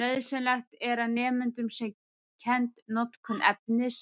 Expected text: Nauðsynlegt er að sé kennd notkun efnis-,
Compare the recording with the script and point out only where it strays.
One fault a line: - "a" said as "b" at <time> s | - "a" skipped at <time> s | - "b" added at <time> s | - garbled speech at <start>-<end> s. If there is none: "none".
- "nemendum" added at 1.2 s